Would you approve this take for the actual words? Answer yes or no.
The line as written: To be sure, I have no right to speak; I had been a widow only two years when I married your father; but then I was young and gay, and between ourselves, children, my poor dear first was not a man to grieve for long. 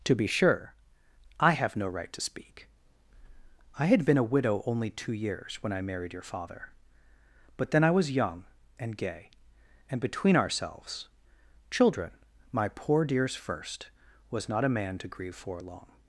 no